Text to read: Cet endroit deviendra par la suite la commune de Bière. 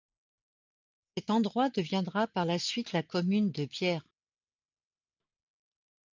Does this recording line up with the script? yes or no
yes